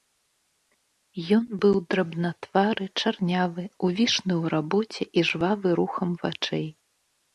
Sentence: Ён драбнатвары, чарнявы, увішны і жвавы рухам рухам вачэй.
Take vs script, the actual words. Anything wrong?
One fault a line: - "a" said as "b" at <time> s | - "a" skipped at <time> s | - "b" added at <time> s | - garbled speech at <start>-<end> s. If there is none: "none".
- "быў" added at 1.6 s
- "ў рабоце" added at 4.4 s
- "рухам" skipped at 6.1 s